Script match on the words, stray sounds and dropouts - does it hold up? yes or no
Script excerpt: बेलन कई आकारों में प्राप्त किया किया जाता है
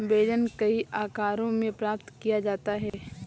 no